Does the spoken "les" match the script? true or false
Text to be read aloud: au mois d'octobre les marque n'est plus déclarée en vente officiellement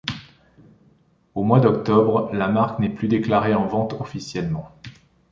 false